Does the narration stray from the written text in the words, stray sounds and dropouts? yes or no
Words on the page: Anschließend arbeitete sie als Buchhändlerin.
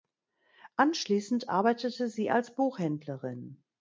no